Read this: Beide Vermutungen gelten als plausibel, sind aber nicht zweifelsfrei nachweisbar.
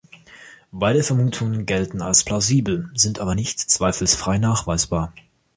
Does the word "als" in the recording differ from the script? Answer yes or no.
no